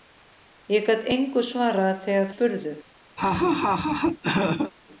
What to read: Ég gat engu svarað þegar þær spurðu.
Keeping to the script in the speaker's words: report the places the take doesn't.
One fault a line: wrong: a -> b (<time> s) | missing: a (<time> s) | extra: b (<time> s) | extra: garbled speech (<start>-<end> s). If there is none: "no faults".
missing: þær (2.3 s)